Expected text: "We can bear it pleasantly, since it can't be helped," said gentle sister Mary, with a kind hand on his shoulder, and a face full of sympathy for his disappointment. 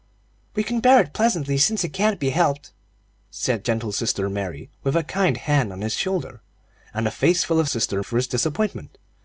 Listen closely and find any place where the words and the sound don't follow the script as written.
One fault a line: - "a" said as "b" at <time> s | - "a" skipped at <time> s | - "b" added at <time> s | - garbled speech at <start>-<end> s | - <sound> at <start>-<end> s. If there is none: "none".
- "sympathy" said as "sister" at 7.6 s